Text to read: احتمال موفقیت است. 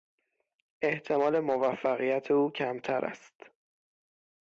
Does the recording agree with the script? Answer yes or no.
no